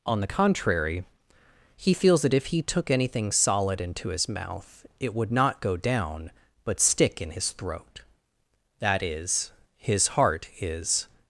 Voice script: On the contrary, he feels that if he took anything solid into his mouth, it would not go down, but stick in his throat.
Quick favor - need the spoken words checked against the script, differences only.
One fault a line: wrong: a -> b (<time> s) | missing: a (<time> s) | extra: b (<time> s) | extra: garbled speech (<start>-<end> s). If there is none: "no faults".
extra: That is his heart is (8.8 s)